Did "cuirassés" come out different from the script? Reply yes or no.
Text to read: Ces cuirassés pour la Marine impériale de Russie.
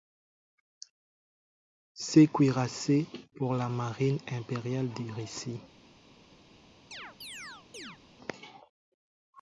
no